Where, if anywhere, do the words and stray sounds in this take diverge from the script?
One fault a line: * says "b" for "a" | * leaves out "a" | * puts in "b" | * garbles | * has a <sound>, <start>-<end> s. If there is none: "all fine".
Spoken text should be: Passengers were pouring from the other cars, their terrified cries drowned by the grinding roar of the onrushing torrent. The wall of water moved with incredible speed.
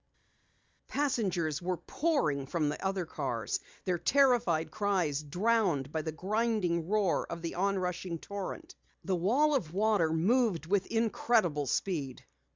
all fine